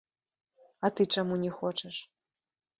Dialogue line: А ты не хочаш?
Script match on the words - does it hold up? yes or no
no